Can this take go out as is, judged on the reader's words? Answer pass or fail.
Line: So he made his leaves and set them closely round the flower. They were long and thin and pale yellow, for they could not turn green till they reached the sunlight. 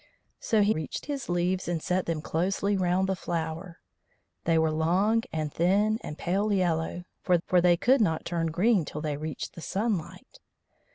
fail